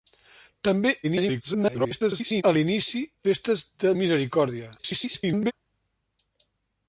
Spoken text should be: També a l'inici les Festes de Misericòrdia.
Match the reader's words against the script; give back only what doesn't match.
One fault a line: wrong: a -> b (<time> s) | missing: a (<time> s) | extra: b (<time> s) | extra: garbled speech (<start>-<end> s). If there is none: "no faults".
extra: garbled speech (1.0-2.4 s)
missing: les (3.0 s)
extra: garbled speech (4.8-5.5 s)